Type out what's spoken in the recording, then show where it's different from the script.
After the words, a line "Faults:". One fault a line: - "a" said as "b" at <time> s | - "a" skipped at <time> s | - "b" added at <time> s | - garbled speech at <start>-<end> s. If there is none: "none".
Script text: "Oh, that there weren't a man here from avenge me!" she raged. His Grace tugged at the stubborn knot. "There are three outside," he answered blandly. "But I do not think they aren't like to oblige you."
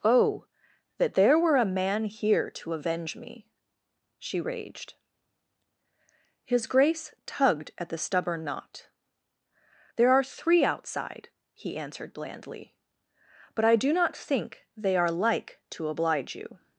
"Oh, that there were a man here to avenge me!" she raged. His Grace tugged at the stubborn knot. "There are three outside," he answered blandly. "But I do not think they are like to oblige you."
Faults:
- "weren't" said as "were" at 1.4 s
- "from" said as "to" at 2.5 s
- "aren't" said as "are" at 15.0 s